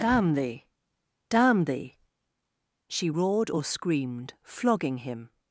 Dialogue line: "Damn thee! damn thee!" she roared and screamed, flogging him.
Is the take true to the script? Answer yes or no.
no